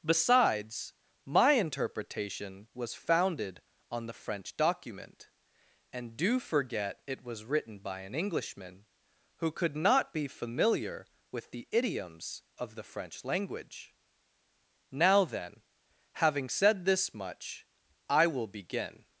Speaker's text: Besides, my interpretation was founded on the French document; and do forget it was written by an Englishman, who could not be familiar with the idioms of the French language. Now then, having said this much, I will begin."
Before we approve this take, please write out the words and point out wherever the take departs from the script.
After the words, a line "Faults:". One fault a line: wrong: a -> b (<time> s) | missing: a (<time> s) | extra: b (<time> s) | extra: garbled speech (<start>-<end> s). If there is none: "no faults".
Besides, my interpretation was founded on the French document; and do forget it was written by an Englishman, who could not be familiar with the idioms of the French language. Now then, having said this much, I will begin."
Faults:
no faults